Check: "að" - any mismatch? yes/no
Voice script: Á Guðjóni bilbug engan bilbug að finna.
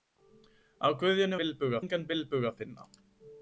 no